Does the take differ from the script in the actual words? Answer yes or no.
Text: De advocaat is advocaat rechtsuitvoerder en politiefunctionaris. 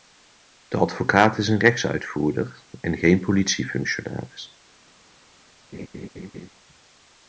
yes